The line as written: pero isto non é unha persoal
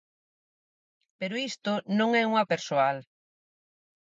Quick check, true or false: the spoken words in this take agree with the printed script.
true